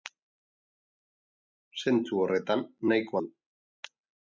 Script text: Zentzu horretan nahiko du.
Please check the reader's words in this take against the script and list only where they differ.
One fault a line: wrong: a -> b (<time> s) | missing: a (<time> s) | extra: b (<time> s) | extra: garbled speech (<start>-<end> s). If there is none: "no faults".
no faults